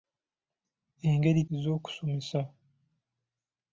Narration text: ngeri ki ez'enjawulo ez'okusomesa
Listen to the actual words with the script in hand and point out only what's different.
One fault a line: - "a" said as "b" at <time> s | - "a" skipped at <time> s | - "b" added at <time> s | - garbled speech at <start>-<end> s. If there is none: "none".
- "ki ez'enjawulo" skipped at 1.4 s